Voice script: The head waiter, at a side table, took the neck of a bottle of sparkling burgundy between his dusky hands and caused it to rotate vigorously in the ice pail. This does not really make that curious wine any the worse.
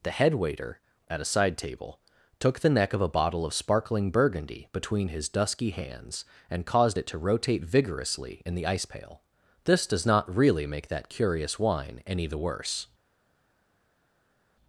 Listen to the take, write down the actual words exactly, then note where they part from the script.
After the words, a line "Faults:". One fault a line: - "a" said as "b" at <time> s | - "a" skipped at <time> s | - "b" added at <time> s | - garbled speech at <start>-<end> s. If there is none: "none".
The head waiter, at a side table, took the neck of a bottle of sparkling burgundy between his dusky hands and caused it to rotate vigorously in the ice pail. This does not really make that curious wine any the worse.
Faults:
none